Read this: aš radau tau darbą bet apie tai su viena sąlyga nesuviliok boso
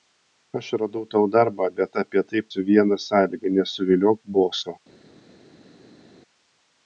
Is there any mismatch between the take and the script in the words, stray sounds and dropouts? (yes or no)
no